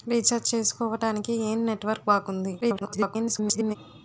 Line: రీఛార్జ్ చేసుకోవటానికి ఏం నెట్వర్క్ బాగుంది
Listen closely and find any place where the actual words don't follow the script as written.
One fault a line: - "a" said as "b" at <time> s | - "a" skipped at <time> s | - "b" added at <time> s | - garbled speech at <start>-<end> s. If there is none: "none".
- garbled speech at 2.6-3.8 s